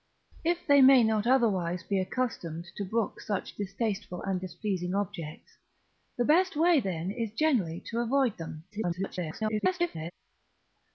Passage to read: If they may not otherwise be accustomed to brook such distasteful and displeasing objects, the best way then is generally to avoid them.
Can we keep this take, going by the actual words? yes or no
no